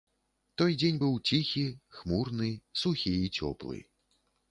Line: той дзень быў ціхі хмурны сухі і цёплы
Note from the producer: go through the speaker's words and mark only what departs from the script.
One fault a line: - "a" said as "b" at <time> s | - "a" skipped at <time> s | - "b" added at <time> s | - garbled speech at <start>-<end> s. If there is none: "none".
none